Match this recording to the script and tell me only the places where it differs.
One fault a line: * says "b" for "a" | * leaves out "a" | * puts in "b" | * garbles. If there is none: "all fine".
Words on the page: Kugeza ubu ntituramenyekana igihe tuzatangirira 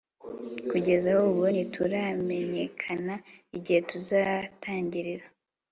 all fine